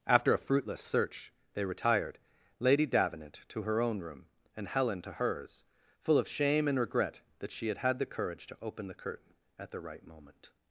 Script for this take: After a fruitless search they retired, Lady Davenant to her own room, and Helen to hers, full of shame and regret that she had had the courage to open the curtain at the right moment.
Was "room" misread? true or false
false